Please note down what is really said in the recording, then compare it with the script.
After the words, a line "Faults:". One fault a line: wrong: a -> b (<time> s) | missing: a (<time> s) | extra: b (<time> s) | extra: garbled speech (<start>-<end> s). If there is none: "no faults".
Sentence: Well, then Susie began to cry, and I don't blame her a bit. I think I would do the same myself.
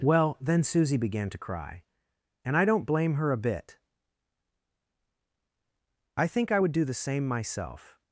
Well, then Susie began to cry, and I don't blame her a bit. I think I would do the same myself.
Faults:
no faults